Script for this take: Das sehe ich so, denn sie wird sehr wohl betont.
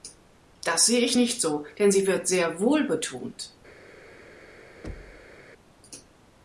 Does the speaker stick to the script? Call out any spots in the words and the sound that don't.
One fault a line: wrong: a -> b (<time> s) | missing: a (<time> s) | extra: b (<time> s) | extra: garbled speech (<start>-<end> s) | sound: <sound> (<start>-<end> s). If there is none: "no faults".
extra: nicht (1.1 s)
sound: thud (4.8-5.4 s)